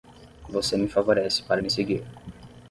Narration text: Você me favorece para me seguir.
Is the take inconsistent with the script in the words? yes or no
no